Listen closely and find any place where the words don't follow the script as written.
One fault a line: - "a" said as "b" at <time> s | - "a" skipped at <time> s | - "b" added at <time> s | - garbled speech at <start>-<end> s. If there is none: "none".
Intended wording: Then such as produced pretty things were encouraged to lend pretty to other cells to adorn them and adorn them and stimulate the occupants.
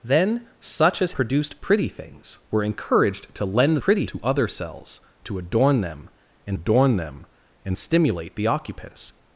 none